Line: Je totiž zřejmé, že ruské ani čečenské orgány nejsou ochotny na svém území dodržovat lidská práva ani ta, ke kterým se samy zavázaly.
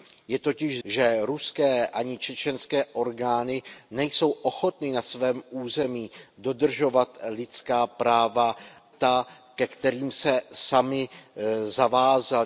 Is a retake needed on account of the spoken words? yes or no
yes